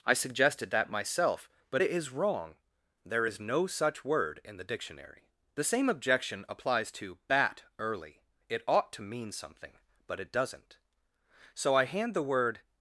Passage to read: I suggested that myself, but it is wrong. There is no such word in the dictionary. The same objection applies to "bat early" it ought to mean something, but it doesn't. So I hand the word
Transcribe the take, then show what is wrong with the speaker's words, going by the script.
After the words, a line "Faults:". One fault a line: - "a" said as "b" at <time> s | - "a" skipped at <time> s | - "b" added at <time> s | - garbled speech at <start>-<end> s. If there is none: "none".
I suggested that myself, but it is wrong. There is no such word in the dictionary. The same objection applies to "bat early" it ought to mean something, but it doesn't. So I hand the word
Faults:
none